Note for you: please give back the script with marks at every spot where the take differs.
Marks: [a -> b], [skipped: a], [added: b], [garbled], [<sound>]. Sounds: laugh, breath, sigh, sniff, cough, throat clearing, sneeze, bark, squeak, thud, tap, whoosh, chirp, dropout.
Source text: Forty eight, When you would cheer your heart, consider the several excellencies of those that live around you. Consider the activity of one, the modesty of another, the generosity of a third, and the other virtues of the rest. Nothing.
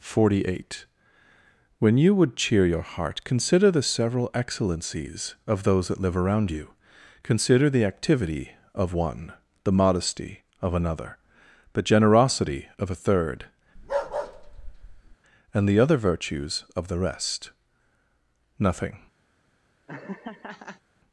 Forty eight, When you would cheer your heart, consider the several excellencies of those that live around you. Consider the activity of one, the modesty of another, the generosity of a third, [bark] and the other virtues of the rest. Nothing. [laugh]